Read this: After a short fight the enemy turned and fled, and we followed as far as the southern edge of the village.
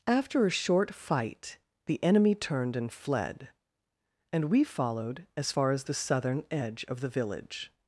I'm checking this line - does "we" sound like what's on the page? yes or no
yes